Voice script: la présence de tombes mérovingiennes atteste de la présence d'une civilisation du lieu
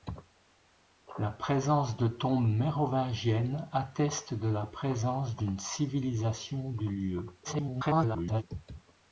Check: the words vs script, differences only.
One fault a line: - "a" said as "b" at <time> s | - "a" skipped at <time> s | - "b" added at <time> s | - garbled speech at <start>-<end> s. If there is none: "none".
- garbled speech at 7.4-8.4 s